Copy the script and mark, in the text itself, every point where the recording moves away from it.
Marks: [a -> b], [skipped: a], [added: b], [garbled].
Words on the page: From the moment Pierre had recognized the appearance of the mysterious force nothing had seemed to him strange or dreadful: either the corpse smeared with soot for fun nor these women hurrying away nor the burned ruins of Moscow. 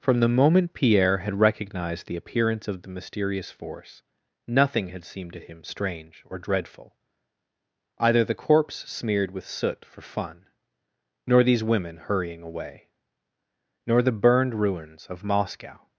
From the moment Pierre had recognized the appearance of the mysterious force nothing had seemed to him strange or dreadful: either the corpse smeared with soot for fun nor these women hurrying away nor the burned ruins of Moscow.